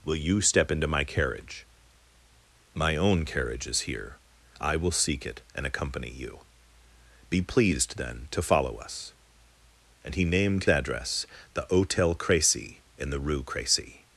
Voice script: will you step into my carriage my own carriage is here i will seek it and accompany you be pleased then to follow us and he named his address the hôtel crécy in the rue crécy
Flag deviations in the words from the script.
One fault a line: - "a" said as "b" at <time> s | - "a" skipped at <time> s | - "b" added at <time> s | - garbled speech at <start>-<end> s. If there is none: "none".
- "his" skipped at 10.7 s